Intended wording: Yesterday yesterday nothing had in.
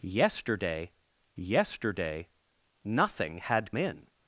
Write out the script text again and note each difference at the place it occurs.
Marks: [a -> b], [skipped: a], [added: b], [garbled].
Yesterday yesterday nothing had in.